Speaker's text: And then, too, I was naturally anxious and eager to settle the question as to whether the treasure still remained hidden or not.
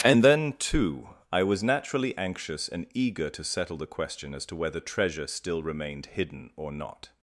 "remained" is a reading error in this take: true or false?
false